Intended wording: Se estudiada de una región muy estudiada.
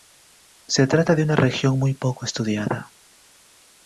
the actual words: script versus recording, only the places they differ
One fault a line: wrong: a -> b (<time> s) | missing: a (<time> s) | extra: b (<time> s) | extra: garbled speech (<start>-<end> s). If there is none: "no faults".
wrong: estudiada -> trata (0.9 s)
extra: poco (1.9 s)